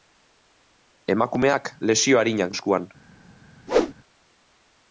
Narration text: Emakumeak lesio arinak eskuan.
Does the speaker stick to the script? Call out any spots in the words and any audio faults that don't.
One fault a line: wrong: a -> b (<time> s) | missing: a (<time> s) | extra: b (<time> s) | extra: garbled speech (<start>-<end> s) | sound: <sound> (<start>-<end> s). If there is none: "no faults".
sound: whoosh (3.7-3.9 s)